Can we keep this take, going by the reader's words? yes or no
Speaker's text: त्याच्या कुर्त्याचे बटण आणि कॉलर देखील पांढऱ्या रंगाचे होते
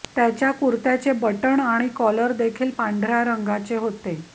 yes